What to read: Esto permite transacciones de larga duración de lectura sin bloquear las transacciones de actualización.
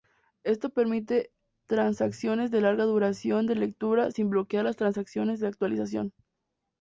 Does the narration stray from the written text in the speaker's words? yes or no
no